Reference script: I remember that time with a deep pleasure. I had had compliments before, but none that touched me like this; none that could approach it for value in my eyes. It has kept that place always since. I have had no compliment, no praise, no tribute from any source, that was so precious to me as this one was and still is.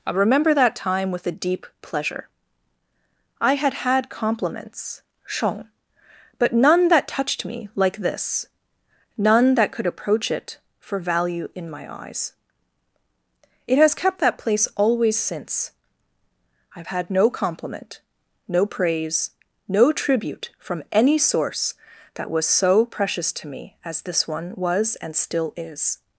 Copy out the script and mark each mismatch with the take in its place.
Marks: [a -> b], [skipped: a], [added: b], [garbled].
I remember that time with a deep pleasure. I had had compliments [before, -> shong] but none that touched me like this; none that could approach it for value in my eyes. It has kept that place always since. I have had no compliment, no praise, no tribute from any source, that was so precious to me as this one was and still is.